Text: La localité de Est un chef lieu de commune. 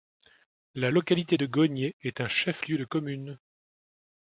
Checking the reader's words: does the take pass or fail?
fail